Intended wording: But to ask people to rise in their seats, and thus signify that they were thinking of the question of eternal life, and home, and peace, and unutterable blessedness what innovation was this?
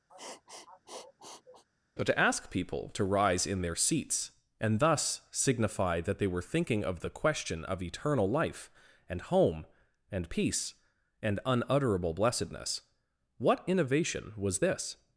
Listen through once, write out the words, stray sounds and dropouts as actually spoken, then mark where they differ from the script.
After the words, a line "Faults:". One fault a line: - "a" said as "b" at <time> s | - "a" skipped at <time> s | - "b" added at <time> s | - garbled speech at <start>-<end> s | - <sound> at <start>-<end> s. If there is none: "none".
But to ask people to rise in their seats, and thus signify that they were thinking of the question of eternal life, and home, and peace, and unutterable blessedness what innovation was this?
Faults:
- sniff at 0.1-1.6 s